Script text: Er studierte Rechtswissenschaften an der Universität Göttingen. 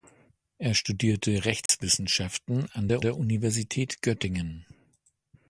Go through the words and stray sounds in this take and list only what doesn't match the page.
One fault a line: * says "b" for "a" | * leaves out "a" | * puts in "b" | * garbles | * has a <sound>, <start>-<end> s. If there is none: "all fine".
* has a dropout, 1.7-1.7 s
* puts in "der"